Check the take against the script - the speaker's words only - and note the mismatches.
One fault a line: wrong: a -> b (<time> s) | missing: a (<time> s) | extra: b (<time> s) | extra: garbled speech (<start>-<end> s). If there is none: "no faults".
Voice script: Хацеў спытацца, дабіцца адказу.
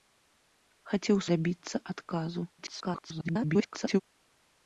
missing: спытацца (1.2 s)
extra: garbled speech (2.6-4.0 s)